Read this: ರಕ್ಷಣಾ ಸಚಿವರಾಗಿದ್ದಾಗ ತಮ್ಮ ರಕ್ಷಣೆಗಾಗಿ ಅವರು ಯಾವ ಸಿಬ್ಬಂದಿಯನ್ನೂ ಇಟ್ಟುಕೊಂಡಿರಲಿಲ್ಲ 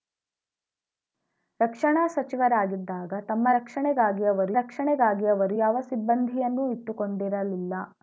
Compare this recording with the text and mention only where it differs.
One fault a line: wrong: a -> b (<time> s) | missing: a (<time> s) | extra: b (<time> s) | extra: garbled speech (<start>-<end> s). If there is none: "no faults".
extra: ರಕ್ಷಣೆಗಾಗಿ ಅವರು (4.5 s)